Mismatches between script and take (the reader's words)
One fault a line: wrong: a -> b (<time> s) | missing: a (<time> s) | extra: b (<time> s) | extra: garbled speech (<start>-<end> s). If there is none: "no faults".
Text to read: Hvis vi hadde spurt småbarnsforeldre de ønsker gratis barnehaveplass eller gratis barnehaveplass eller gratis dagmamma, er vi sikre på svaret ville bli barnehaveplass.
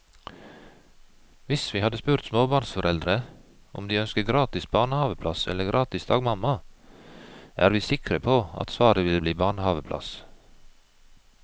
extra: om (3.7 s)
missing: barnehaveplass eller gratis (6.1 s)
extra: at (8.6 s)